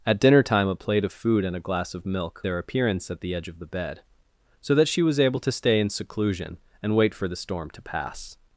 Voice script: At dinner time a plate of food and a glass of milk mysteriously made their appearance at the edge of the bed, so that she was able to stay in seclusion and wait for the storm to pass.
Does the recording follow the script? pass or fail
fail